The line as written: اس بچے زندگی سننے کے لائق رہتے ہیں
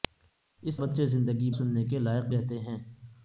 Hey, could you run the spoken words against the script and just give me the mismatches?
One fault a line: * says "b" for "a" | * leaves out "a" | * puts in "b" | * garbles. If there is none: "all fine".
all fine